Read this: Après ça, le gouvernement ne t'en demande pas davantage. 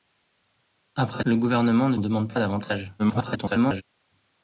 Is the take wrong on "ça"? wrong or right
wrong